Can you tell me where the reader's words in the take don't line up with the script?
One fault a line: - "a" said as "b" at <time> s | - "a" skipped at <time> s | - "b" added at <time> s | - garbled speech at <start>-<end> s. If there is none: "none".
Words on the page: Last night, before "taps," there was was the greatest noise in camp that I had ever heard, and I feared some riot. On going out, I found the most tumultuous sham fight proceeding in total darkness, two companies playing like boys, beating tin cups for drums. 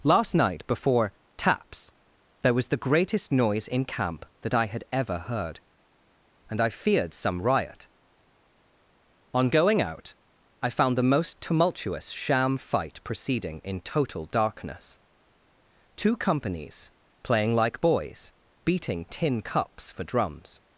- "was" skipped at 2.7 s